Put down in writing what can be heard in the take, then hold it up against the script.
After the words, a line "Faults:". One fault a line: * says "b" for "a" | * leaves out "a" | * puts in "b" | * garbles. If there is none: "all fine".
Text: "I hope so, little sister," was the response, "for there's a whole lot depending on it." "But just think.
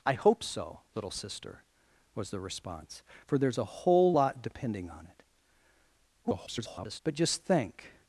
"I hope so, little sister," was the response, "for there's a whole lot depending on it." [garbled] "But just think.
Faults:
* garbles